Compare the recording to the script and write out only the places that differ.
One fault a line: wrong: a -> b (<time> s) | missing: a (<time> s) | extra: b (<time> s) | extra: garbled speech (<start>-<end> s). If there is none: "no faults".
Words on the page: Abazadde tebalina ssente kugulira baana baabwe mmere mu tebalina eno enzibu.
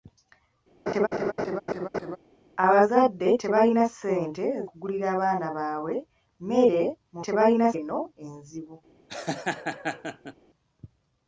no faults